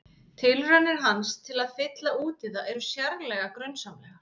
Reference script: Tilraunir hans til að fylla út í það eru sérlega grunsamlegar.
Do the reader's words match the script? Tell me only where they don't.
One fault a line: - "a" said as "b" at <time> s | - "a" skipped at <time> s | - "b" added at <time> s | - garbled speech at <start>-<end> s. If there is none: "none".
none